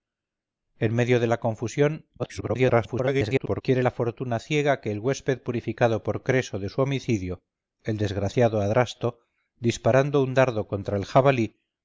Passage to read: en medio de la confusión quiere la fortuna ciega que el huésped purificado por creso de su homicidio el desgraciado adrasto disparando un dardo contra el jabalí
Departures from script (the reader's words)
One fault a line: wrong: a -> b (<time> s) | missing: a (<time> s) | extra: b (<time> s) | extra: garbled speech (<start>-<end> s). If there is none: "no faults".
extra: garbled speech (2.2-3.6 s)